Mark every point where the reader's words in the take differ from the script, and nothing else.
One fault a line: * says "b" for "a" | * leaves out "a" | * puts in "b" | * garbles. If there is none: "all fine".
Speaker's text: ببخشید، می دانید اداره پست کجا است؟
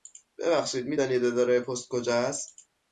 all fine